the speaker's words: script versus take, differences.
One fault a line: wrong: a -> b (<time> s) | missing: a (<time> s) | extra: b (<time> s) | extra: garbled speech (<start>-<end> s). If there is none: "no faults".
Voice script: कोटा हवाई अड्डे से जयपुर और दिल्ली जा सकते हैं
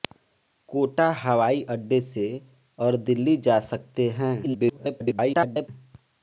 missing: जयपुर (2.2 s)
extra: garbled speech (4.4-5.7 s)